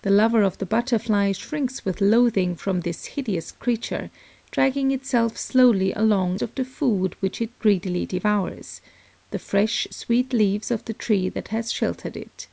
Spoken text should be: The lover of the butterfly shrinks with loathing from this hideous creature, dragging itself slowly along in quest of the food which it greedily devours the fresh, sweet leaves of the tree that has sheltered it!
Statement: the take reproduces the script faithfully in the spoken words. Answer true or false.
false